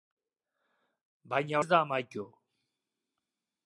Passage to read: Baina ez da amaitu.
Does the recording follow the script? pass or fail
pass